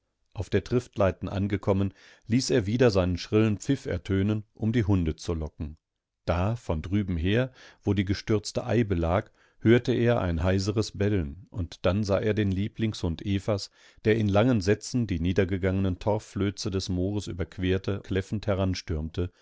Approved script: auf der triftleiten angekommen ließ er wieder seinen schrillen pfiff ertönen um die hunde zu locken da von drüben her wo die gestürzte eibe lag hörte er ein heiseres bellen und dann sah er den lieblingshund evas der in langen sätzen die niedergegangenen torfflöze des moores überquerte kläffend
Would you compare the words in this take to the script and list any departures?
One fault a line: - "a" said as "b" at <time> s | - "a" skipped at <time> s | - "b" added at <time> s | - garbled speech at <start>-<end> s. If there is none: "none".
none